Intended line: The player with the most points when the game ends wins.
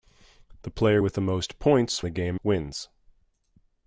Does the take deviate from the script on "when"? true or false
true